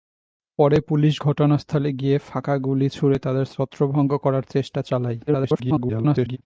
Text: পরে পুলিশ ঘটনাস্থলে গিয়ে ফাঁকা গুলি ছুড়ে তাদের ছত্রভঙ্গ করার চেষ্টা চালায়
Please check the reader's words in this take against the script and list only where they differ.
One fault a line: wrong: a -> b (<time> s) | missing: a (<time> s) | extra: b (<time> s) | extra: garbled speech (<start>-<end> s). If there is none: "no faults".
extra: garbled speech (5.3-6.4 s)